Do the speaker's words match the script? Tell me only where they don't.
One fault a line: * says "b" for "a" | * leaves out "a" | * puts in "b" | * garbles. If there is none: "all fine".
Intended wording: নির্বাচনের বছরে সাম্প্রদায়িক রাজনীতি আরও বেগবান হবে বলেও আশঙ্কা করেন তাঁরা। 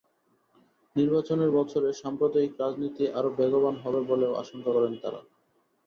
all fine